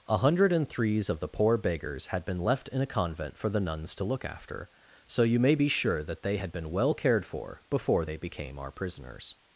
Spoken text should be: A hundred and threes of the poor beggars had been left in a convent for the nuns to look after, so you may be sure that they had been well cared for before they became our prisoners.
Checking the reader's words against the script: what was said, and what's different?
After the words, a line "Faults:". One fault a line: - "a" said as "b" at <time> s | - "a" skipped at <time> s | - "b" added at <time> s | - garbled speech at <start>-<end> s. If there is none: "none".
A hundred and threes of the poor beggars had been left in a convent for the nuns to look after, so you may be sure that they had been well cared for before they became our prisoners.
Faults:
none